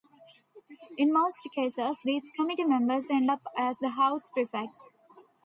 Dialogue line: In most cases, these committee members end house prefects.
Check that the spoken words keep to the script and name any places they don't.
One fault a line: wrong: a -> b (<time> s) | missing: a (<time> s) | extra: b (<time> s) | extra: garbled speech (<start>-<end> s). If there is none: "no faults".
extra: up as the (3.3 s)